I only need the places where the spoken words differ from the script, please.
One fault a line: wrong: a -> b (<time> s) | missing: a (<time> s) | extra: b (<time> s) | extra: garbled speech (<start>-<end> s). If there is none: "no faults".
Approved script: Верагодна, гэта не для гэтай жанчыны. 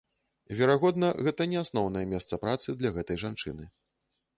extra: асноўнае месца працы (1.6 s)